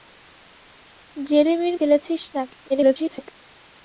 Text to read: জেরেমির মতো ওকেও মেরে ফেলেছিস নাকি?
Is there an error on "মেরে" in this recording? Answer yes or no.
yes